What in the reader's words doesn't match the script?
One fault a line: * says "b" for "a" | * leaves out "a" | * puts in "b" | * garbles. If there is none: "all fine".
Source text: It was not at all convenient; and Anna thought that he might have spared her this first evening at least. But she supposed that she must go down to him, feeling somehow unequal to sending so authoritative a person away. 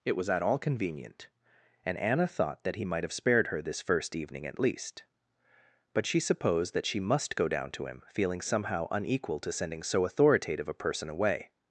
* leaves out "not"